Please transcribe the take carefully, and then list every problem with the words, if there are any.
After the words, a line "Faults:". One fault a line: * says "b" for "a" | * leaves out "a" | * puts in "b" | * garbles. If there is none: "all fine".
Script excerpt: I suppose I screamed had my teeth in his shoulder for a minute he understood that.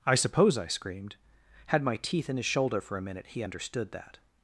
I suppose I screamed had my teeth in his shoulder for a minute he understood that.
Faults:
all fine